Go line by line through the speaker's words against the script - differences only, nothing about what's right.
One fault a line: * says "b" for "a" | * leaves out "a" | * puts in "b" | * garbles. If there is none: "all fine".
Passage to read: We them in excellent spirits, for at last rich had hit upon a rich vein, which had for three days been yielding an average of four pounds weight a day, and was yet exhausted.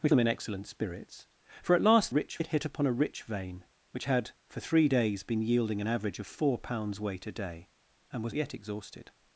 all fine